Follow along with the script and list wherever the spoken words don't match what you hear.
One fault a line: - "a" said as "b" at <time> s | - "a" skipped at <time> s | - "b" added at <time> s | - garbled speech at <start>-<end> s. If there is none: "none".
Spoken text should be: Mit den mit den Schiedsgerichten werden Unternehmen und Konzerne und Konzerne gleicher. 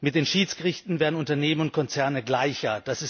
- "mit den" skipped at 0.2 s
- "und Konzerne" skipped at 2.2 s